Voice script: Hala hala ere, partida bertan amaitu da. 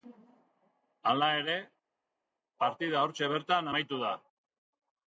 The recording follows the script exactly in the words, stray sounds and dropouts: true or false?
false